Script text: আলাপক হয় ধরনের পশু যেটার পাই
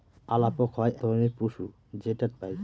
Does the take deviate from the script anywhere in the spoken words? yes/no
no